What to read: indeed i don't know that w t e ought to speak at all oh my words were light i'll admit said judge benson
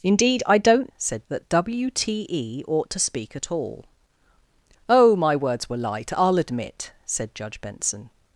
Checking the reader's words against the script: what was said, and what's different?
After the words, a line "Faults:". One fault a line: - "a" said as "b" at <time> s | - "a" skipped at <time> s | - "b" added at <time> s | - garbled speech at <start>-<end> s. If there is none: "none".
indeed i don't said that w t e ought to speak at all oh my words were light i'll admit said judge benson
Faults:
- "know" said as "said" at 1.0 s